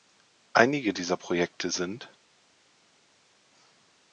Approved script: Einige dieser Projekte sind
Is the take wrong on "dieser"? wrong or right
right